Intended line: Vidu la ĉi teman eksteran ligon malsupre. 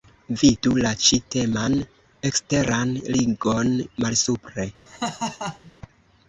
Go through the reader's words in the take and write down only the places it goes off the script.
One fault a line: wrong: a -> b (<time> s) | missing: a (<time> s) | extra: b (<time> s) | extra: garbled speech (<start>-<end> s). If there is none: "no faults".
no faults